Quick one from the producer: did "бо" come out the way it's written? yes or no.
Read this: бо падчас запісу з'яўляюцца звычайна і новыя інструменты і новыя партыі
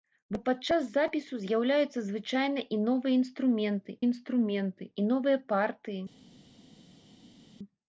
yes